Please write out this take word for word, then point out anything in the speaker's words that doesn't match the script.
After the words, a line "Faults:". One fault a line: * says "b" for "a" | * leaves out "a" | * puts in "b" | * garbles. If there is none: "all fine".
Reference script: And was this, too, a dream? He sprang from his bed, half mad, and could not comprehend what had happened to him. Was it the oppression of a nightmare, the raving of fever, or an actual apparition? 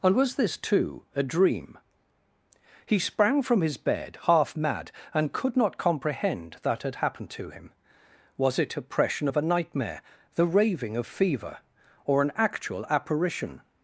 And was this, too, a dream? He sprang from his bed, half mad, and could not comprehend that had happened to him. Was it oppression of a nightmare, the raving of fever, or an actual apparition?
Faults:
* says "that" for "what"
* leaves out "the"